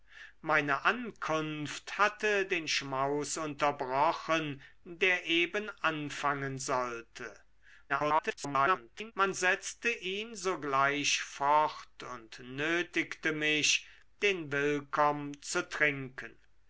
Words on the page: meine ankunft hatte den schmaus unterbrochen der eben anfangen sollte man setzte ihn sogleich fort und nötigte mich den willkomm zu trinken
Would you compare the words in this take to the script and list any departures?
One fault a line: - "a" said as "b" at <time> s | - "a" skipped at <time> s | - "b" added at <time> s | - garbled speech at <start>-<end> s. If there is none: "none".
- garbled speech at 7.9-9.1 s